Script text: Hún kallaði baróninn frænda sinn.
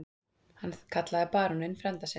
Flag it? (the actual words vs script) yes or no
yes